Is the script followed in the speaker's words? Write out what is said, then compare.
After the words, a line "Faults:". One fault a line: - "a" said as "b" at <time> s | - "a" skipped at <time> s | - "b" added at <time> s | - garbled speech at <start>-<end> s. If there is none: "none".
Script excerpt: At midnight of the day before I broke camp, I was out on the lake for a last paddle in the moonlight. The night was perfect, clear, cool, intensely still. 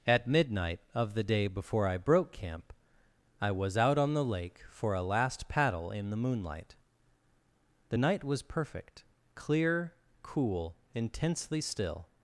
At midnight of the day before I broke camp, I was out on the lake for a last paddle in the moonlight. The night was perfect, clear, cool, intensely still.
Faults:
none